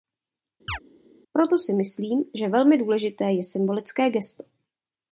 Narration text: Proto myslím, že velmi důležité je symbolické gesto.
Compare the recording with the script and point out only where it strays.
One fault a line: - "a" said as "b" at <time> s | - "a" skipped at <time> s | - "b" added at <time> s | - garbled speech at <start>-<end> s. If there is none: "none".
- "si" added at 1.6 s